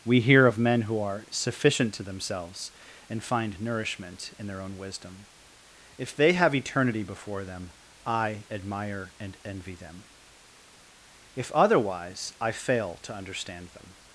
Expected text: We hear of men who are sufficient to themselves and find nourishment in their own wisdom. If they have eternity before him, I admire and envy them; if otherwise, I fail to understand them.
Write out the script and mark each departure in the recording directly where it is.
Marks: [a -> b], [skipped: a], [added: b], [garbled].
We hear of men who are sufficient to themselves and find nourishment in their own wisdom. If they have eternity before [him, -> them] I admire and envy them; if otherwise, I fail to understand them.